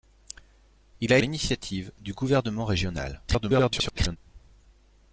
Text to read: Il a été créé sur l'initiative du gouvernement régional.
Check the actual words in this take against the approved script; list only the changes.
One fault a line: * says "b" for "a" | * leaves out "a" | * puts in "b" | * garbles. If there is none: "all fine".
* leaves out "été créé sur"
* garbles